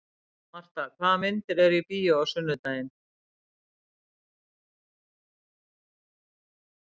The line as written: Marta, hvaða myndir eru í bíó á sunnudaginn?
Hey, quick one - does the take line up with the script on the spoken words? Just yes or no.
yes